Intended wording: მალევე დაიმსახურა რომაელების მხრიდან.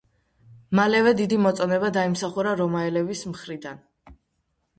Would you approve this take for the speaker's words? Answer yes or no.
no